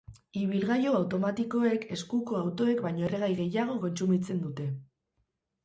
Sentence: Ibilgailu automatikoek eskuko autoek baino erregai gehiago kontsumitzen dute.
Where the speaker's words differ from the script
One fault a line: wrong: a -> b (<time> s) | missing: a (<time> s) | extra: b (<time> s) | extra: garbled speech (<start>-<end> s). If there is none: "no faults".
no faults